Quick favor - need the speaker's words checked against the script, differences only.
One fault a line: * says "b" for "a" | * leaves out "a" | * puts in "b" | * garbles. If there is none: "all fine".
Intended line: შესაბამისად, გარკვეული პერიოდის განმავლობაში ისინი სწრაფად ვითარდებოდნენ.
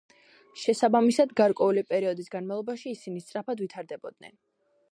all fine